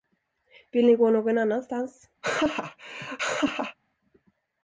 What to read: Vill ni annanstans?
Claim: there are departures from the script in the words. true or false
true